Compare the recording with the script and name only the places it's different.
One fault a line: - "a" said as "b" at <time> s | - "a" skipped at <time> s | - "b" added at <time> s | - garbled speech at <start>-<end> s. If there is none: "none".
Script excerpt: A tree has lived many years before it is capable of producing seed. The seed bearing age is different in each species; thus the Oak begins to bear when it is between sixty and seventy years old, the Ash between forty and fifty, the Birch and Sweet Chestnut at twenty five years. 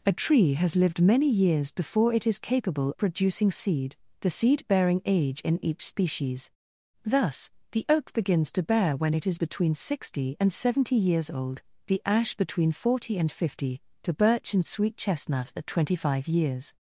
- "of" skipped at 2.9 s
- "is different" skipped at 5.4 s